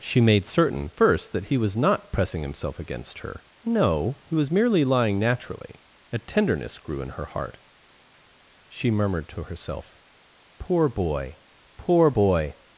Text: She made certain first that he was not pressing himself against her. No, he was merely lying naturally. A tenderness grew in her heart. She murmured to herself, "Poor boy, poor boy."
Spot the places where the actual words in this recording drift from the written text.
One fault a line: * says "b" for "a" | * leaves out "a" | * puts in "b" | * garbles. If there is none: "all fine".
all fine